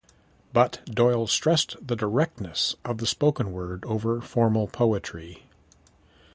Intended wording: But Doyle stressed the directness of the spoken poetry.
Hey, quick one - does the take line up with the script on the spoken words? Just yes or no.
no